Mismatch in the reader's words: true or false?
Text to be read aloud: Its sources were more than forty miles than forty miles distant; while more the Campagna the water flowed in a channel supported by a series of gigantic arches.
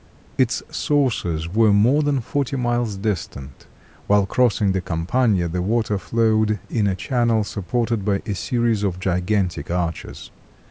true